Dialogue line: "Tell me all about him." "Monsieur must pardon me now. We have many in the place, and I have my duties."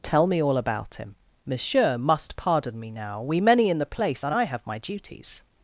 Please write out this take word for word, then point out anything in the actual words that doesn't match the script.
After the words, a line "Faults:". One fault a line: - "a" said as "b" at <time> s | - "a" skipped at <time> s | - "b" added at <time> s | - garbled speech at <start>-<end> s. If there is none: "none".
"Tell me all about him." "Monsieur must pardon me now. We many in the place, and I have my duties."
Faults:
- "have" skipped at 3.4 s